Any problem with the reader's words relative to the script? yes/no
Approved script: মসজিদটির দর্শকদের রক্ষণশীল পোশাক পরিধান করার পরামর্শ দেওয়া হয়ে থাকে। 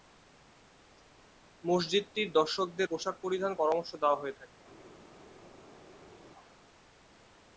yes